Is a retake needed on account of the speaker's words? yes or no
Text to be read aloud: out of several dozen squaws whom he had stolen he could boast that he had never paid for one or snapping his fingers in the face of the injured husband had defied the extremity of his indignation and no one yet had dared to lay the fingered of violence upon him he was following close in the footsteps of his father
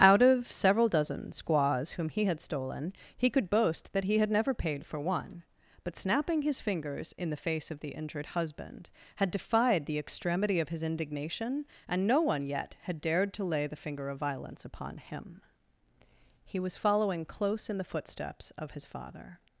yes